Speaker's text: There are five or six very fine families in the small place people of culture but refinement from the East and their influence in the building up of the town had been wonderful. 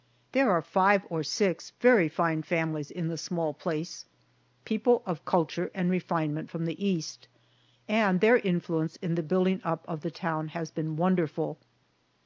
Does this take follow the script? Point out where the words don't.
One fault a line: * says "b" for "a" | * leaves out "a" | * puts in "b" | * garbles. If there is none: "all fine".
* says "and" for "but"
* says "has" for "had"